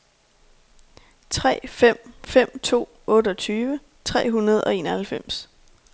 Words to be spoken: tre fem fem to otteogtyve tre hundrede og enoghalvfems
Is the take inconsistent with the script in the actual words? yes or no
no